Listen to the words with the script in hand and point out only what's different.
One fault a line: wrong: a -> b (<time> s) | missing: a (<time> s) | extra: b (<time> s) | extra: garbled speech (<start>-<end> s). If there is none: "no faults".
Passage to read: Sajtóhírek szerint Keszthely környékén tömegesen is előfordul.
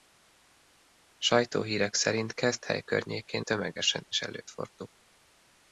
no faults